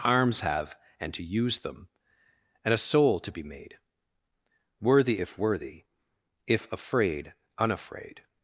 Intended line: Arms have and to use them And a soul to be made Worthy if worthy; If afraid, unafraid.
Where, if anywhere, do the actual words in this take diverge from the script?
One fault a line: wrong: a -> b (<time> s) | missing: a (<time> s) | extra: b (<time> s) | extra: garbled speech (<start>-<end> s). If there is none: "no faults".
no faults